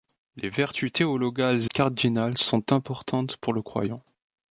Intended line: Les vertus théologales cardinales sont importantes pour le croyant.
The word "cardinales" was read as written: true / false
true